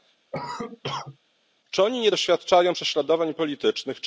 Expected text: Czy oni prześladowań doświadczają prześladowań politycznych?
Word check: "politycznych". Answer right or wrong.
right